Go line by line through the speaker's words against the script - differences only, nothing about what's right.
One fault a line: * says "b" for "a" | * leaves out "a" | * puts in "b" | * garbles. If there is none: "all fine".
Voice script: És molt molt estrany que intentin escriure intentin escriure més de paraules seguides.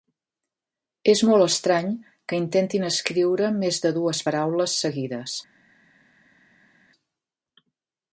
* leaves out "molt"
* leaves out "intentin escriure"
* puts in "dues"